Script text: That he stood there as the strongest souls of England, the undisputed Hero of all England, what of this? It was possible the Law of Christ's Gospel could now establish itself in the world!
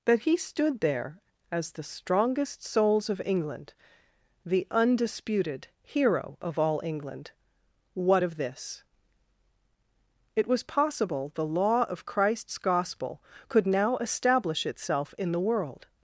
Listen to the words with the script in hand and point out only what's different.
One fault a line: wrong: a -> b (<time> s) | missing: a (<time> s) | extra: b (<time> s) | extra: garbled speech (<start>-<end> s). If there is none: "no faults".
no faults